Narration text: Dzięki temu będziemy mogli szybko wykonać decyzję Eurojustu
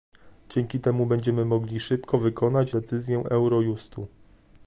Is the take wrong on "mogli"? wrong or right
right